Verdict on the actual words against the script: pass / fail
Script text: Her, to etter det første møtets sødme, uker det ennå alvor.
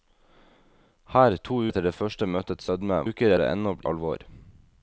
pass